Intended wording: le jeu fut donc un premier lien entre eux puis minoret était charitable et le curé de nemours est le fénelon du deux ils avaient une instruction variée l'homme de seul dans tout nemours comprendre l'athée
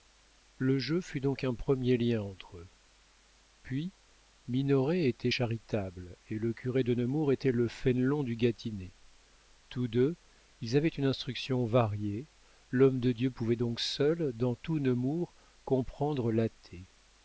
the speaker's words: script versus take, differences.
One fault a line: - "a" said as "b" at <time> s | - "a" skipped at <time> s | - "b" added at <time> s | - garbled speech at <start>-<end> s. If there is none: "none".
- "est" said as "était" at 7.3 s
- "gâtinais tous" added at 8.4 s
- "dieu pouvait donc" added at 13.1 s